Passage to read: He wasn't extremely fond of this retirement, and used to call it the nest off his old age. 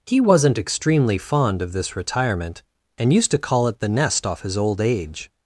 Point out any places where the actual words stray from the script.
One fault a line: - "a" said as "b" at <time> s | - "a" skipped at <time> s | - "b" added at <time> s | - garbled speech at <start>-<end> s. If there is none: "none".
none